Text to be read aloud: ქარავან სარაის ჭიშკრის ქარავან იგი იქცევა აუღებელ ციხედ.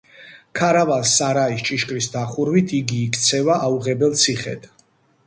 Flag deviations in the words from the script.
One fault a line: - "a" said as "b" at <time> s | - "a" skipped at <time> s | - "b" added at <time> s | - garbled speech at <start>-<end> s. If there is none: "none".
- "ქარავან" said as "დახურვით" at 2.1 s